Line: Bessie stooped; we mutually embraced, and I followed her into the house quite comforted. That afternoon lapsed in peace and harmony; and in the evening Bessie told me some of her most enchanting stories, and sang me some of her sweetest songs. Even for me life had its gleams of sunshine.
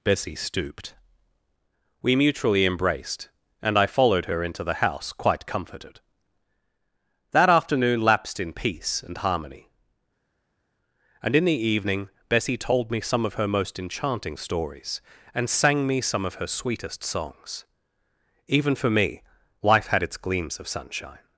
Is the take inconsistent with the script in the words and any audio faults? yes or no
no